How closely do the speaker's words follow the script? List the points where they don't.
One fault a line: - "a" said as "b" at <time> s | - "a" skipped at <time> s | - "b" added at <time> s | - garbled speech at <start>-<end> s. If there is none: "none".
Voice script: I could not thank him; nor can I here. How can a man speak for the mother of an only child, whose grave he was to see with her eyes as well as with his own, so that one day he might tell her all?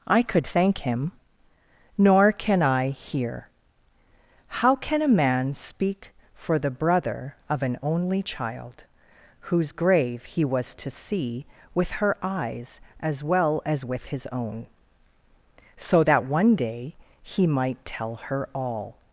- "not" skipped at 0.5 s
- "mother" said as "brother" at 6.7 s